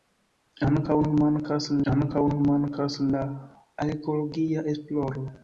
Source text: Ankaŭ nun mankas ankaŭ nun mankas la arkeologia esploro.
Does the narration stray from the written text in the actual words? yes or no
no